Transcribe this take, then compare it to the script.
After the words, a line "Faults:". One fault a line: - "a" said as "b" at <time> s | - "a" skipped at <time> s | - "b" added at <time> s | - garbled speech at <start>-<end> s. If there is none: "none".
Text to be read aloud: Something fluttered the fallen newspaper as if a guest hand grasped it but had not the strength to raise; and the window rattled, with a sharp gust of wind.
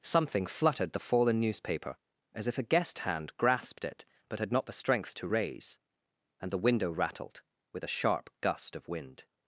Something fluttered the fallen newspaper as if a guest hand grasped it but had not the strength to raise; and the window rattled, with a sharp gust of wind.
Faults:
none